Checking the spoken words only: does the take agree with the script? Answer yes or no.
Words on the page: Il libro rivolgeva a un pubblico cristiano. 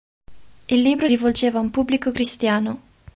yes